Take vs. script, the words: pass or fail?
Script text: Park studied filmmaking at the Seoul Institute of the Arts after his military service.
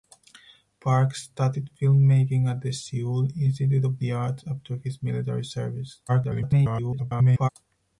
fail